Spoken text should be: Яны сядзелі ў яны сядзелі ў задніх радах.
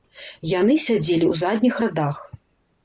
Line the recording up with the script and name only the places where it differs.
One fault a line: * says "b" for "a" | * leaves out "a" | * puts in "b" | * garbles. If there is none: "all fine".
* leaves out "яны сядзелі ў"